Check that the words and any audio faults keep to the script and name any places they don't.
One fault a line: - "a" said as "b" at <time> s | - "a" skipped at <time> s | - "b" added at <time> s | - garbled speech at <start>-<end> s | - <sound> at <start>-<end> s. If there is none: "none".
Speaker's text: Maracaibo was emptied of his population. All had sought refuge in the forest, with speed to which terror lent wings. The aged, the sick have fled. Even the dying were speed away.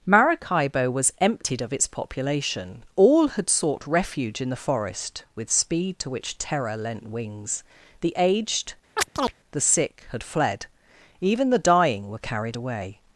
- "his" said as "its" at 1.7 s
- chirp at 9.0-9.3 s
- "have" said as "had" at 10.1 s
- "speed" said as "carried" at 12.2 s